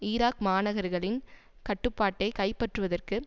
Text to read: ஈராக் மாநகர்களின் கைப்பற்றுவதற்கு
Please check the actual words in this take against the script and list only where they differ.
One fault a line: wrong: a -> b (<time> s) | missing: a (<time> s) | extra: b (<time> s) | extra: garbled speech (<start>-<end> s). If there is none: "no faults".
extra: கட்டுப்பாட்டை (1.7 s)